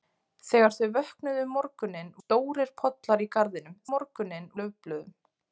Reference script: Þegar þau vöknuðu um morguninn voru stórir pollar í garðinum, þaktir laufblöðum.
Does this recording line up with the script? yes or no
no